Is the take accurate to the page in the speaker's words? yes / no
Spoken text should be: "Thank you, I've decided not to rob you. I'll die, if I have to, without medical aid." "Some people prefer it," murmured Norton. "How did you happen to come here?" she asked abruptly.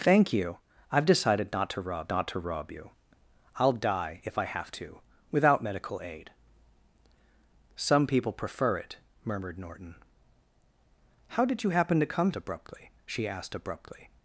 no